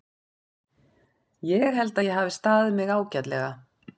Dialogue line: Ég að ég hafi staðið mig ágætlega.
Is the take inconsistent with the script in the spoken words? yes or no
yes